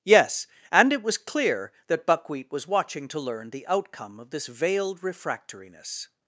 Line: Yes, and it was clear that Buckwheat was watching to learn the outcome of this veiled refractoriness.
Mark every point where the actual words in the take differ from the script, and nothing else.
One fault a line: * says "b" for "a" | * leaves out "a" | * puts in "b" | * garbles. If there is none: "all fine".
all fine